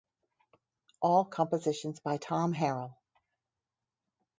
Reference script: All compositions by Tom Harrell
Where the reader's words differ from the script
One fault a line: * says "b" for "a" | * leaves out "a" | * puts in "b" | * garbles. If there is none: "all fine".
all fine